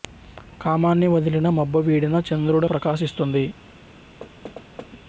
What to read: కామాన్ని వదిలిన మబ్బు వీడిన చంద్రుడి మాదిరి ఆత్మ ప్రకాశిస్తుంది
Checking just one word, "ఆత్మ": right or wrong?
wrong